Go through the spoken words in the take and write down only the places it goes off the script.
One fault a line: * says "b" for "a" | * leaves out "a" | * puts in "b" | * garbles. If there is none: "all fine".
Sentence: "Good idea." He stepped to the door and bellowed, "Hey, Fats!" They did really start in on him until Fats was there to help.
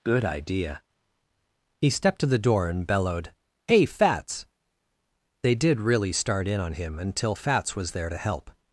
all fine